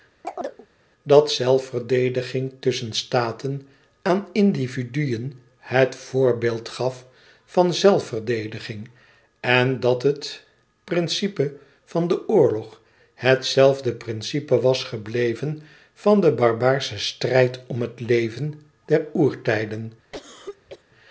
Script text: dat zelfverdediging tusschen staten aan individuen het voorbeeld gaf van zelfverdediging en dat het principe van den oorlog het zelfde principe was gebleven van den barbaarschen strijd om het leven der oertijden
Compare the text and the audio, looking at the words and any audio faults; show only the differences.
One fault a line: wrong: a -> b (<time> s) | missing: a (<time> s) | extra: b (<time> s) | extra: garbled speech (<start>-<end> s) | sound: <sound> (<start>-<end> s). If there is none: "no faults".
sound: chirp (0.2-0.7 s)
sound: cough (20.1-20.8 s)